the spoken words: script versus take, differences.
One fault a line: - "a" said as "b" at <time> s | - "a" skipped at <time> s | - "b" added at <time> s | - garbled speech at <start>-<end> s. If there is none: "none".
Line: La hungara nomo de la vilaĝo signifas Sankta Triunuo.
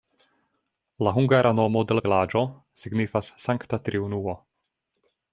none